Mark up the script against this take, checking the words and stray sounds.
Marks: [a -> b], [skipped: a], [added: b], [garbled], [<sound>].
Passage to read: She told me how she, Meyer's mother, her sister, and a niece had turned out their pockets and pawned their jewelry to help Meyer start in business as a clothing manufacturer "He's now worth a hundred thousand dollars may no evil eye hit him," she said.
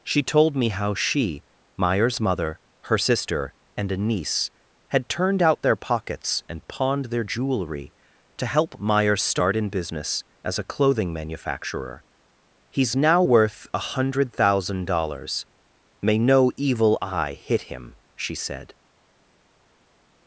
She told me how she, Meyer's mother, her sister, and a niece had turned out their pockets and pawned their jewelry to help Meyer start in business as a clothing manufacturer "He's now worth a hundred thousand dollars may no evil eye hit him," she said.